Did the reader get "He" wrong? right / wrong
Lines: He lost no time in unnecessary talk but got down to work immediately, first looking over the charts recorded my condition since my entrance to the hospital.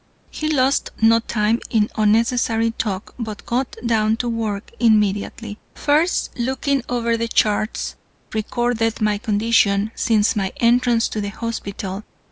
right